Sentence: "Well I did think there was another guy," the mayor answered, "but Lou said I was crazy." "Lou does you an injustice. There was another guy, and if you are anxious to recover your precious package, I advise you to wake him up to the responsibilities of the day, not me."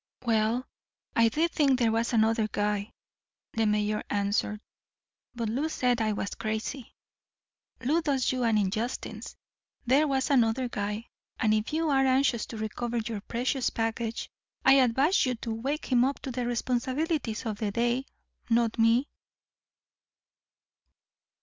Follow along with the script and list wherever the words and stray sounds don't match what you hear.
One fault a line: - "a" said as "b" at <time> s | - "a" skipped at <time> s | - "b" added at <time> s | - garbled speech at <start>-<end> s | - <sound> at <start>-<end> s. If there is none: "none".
none